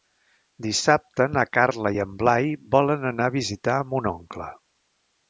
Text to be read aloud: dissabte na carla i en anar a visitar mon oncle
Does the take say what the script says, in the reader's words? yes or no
no